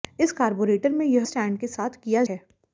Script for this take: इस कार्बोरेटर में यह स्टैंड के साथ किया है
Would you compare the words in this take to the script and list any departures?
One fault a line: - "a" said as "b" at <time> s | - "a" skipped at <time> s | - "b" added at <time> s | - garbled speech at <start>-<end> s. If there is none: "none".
none